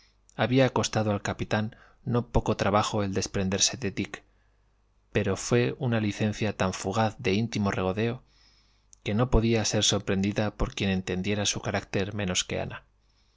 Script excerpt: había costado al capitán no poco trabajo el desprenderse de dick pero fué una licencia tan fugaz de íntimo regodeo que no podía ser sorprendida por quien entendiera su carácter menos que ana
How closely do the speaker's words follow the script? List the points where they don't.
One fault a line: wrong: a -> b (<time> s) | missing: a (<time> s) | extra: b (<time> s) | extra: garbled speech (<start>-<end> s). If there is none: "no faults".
no faults